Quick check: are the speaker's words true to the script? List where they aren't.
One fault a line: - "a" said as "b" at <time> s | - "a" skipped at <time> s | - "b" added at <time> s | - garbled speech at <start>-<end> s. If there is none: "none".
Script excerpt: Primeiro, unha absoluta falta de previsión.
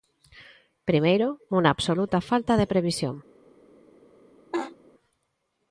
none